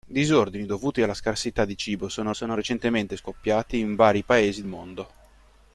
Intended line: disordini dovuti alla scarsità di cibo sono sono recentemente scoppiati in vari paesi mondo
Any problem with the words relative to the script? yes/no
no